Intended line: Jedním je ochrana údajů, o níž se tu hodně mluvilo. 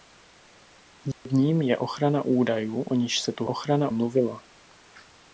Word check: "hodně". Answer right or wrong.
wrong